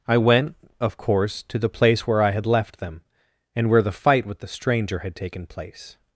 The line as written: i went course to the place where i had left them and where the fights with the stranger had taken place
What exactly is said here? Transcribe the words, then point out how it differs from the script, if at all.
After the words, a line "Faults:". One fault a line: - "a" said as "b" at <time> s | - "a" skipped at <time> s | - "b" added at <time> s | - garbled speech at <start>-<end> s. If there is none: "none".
i went of course to the place where i had left them and where the fight with the stranger had taken place
Faults:
- "of" added at 0.8 s
- "fights" said as "fight" at 3.9 s